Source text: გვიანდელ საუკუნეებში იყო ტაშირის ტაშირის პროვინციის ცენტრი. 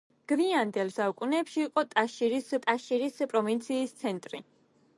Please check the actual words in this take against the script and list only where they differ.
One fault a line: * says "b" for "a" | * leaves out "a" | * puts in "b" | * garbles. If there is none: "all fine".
all fine